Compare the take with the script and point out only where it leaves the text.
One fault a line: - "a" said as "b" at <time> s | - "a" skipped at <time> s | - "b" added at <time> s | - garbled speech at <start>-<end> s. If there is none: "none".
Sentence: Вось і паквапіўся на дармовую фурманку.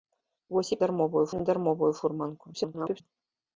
- "паквапіўся" said as "дармовую" at 0.8 s
- garbled speech at 2.5-3.0 s